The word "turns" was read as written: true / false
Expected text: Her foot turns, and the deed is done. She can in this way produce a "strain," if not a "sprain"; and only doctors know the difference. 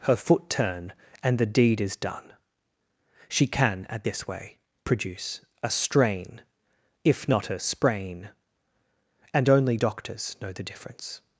false